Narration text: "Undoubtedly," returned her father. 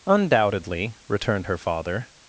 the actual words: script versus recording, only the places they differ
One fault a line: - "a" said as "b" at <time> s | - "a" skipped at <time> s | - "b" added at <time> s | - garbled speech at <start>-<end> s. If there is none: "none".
none